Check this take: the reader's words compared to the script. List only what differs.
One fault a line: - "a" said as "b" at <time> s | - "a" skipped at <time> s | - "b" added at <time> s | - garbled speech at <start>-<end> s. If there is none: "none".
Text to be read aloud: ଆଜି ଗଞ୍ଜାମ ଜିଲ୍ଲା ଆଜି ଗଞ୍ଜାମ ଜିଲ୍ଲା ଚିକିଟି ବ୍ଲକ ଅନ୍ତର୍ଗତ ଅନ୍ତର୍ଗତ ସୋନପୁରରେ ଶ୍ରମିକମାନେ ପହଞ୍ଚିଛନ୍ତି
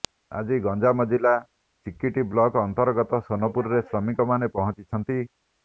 - "ଆଜି ଗଞ୍ଜାମ ଜିଲ୍ଲା" skipped at 1.3 s
- "ଅନ୍ତର୍ଗତ" skipped at 3.2 s